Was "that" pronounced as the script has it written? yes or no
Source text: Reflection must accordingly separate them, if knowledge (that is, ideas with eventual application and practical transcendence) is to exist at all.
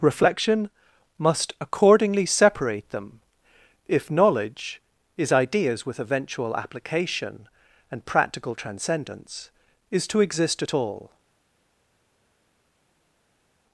no